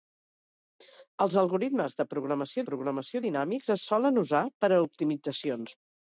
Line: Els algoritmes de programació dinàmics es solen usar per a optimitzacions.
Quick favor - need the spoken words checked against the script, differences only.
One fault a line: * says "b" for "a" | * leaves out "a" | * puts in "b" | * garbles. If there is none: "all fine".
* puts in "programació"